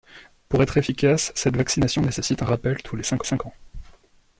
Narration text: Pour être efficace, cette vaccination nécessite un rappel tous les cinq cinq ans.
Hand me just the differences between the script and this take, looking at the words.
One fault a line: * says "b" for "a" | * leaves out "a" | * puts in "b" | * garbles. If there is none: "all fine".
all fine